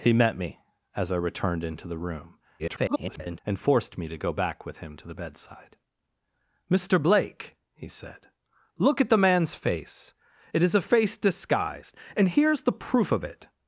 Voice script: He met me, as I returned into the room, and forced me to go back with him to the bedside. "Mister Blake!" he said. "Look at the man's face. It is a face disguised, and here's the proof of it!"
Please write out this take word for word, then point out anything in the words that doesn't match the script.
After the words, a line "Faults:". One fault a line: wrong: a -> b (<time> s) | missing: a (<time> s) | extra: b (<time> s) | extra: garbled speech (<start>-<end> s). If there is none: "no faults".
He met me, as I returned into the room, [garbled] and forced me to go back with him to the bedside. "Mister Blake!" he said. "Look at the man's face. It is a face disguised, and here's the proof of it!"
Faults:
extra: garbled speech (2.6-3.4 s)